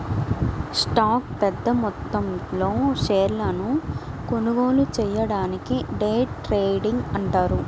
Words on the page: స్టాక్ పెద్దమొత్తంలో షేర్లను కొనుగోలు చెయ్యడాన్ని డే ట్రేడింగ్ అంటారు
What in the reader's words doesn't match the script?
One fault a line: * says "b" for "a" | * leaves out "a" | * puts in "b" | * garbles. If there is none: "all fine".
all fine